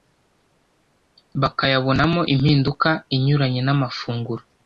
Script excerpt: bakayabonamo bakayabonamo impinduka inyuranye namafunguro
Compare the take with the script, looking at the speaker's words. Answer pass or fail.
fail